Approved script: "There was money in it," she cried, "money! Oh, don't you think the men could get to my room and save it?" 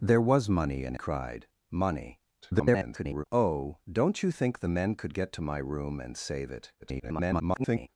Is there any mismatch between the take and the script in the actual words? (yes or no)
yes